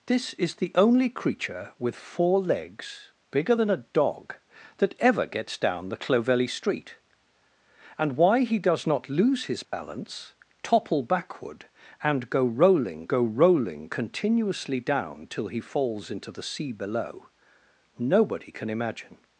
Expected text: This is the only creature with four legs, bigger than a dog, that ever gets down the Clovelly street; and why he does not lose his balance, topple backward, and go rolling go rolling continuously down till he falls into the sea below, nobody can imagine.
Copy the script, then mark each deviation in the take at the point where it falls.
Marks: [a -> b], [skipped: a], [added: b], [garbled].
This is the only creature with four legs, bigger than a dog, that ever gets down the Clovelly street; and why he does not lose his balance, topple backward, and go rolling go rolling continuously down till he falls into the sea below, nobody can imagine.